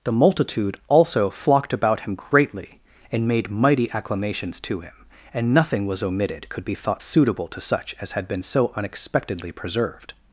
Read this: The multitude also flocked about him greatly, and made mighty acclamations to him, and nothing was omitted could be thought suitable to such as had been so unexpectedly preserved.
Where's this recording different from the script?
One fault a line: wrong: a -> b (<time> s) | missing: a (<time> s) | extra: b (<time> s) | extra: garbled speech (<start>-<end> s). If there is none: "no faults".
no faults